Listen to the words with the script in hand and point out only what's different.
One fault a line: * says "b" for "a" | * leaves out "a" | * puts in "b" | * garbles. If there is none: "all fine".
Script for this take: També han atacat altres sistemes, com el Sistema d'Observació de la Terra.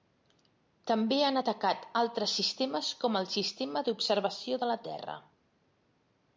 all fine